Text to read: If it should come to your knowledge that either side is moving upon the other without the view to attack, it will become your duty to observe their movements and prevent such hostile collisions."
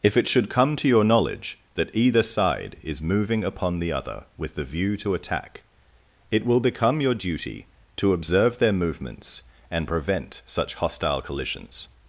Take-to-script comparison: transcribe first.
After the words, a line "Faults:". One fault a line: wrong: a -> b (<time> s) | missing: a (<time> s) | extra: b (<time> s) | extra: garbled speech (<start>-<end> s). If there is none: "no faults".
If it should come to your knowledge that either side is moving upon the other with the view to attack, it will become your duty to observe their movements and prevent such hostile collisions."
Faults:
wrong: without -> with (4.3 s)